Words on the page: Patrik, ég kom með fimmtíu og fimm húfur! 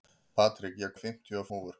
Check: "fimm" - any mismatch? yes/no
yes